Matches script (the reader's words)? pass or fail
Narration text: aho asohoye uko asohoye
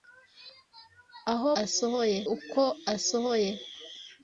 pass